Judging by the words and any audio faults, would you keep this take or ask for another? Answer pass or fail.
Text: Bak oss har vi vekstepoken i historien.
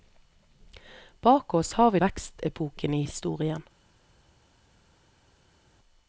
pass